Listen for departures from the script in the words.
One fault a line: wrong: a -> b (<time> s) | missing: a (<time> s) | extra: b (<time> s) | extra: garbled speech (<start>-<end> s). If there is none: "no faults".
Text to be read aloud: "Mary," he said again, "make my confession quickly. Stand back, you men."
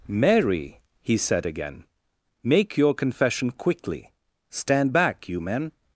wrong: my -> your (2.8 s)